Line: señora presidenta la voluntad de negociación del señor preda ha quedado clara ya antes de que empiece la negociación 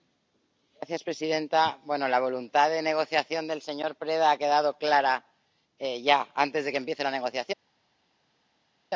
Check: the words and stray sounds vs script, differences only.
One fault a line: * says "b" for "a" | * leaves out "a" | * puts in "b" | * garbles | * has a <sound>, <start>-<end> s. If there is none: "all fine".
all fine